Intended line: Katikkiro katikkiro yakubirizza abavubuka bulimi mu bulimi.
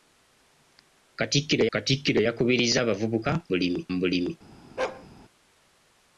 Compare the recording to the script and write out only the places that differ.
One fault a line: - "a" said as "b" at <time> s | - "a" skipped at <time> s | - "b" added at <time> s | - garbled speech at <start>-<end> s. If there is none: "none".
none